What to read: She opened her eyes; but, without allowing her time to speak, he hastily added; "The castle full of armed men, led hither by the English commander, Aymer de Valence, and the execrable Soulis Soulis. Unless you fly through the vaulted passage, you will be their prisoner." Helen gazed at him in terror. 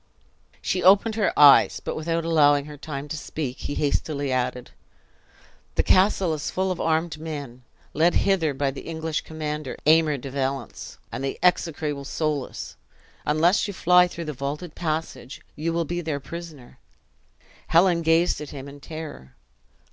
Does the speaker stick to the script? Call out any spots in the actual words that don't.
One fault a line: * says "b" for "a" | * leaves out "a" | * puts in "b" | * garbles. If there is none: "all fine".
* puts in "is"
* leaves out "Soulis"